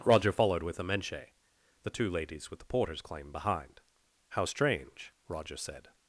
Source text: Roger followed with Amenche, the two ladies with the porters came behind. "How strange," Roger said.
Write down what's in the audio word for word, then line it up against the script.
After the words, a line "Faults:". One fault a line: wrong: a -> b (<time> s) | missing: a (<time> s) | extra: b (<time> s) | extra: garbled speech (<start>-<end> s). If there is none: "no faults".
Roger followed with Amenche, the two ladies with the porters claim behind. "How strange," Roger said.
Faults:
wrong: came -> claim (3.0 s)